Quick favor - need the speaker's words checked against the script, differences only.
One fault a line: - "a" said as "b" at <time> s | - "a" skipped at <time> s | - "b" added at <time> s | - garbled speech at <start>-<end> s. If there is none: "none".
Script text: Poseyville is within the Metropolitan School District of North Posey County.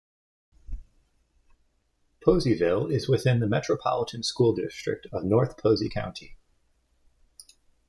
none